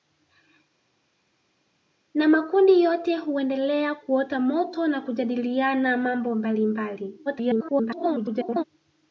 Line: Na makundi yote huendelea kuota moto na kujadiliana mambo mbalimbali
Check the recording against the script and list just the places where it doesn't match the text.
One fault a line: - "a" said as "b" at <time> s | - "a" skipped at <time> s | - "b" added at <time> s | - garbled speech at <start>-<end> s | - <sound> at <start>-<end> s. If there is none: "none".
- garbled speech at 7.3-8.6 s